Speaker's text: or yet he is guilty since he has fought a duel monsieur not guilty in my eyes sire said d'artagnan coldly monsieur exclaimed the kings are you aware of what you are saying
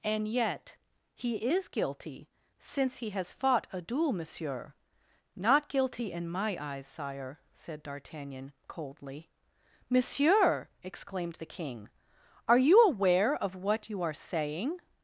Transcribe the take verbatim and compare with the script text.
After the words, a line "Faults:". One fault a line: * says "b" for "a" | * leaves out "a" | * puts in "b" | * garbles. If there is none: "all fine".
and yet he is guilty since he has fought a duel monsieur not guilty in my eyes sire said d'artagnan coldly monsieur exclaimed the king are you aware of what you are saying
Faults:
* says "and" for "or"
* says "king" for "kings"